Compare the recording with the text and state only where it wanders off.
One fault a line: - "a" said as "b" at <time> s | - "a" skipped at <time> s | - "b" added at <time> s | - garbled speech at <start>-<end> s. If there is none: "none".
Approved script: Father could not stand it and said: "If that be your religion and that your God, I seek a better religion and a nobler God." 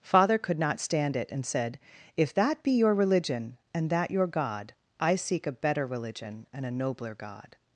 none